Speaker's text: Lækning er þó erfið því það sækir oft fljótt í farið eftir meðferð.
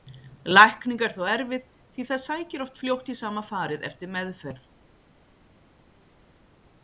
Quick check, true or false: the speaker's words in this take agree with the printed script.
false